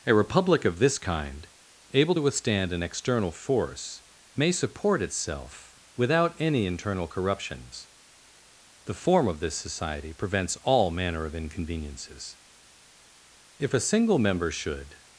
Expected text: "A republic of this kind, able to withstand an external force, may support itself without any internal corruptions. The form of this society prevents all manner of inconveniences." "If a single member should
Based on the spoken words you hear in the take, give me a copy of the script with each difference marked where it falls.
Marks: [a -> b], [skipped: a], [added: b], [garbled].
"A republic of this kind, able to withstand an external force, may support itself without any internal corruptions. The form of this society prevents all manner of inconveniences." "If a single member should